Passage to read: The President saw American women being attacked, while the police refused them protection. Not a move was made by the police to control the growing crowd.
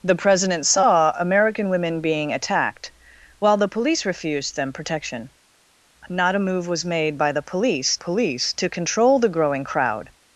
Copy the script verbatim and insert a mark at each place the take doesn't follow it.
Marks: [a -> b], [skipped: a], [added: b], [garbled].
The President saw American women being attacked, while the police refused them protection. Not a move was made by the police [added: police] to control the growing crowd.